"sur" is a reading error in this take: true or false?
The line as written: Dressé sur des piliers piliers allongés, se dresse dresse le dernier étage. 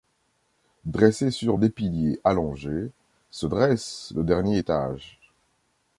false